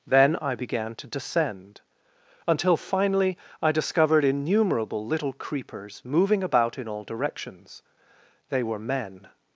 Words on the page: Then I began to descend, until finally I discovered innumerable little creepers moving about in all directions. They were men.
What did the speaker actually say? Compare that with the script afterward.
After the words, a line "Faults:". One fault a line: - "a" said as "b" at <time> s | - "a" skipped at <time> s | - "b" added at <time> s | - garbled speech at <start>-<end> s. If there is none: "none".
Then I began to descend, until finally I discovered innumerable little creepers moving about in all directions. They were men.
Faults:
none